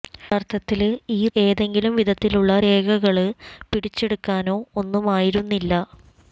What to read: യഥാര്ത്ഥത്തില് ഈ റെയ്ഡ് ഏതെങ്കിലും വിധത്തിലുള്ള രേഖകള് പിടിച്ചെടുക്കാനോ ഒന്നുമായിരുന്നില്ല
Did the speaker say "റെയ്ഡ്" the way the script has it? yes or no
no